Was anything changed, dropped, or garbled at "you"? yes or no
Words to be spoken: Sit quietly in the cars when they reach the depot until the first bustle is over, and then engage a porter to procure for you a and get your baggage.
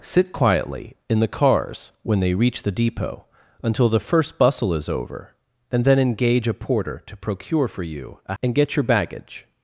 no